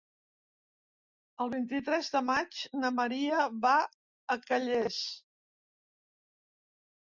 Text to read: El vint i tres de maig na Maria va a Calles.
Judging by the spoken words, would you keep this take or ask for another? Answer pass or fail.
pass